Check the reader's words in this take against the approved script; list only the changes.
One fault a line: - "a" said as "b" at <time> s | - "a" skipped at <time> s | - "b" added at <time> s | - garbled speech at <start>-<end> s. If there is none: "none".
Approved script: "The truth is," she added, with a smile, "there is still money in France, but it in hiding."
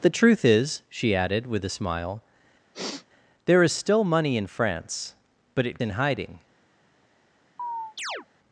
none